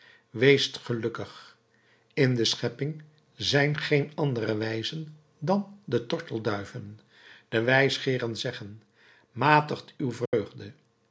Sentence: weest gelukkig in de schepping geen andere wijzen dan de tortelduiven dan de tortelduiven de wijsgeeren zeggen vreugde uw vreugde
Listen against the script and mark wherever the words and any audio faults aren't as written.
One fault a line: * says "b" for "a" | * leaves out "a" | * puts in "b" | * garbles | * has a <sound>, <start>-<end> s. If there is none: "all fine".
* puts in "zijn"
* leaves out "dan"
* leaves out "tortelduiven de"
* says "matigt" for "vreugde"
* has a dropout, 10.3-10.3 s